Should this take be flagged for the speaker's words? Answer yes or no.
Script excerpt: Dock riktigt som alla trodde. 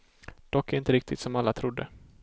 yes